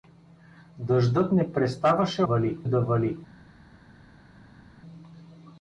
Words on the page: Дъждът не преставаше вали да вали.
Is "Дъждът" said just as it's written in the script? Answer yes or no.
yes